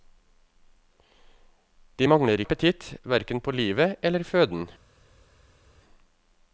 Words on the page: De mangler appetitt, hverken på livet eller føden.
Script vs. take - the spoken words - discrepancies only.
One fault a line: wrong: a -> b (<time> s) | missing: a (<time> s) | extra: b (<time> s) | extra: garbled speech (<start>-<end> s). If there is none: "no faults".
no faults